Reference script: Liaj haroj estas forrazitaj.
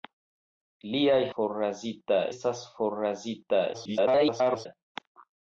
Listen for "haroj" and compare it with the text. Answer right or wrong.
wrong